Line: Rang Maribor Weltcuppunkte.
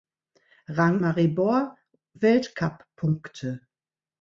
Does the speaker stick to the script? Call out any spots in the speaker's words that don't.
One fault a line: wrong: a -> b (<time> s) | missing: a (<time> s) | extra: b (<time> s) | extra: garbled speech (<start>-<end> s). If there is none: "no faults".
no faults